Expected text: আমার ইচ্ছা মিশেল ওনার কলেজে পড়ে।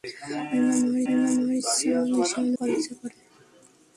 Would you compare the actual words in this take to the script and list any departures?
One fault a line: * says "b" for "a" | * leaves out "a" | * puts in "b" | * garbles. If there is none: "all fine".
* puts in "আমার"
* leaves out "ওনার"